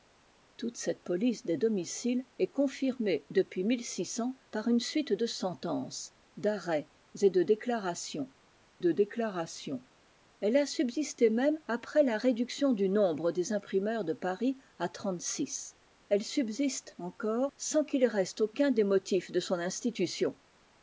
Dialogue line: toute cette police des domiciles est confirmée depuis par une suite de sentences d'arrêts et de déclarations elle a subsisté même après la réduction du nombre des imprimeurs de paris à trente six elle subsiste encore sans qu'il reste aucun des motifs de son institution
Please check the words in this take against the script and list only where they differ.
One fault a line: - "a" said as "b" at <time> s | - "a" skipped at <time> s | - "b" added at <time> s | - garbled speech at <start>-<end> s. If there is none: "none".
- "de déclarations" added at 8.8 s